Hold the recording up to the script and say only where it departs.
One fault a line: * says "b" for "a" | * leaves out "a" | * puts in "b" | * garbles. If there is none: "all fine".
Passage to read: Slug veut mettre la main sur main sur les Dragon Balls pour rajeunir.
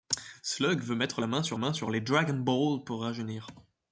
all fine